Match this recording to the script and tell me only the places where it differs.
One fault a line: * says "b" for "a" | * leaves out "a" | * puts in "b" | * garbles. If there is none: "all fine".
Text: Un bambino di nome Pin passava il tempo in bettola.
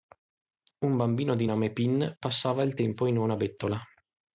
* puts in "una"